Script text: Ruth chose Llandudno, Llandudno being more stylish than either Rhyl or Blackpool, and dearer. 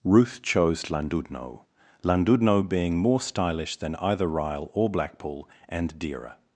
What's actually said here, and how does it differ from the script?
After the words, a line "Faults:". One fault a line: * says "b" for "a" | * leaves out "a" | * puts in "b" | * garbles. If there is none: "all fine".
Ruth chose Llandudno, Llandudno being more stylish than either Rhyl or Blackpool, and dearer.
Faults:
all fine